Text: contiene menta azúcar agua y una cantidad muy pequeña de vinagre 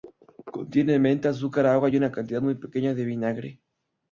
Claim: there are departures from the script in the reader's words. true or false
false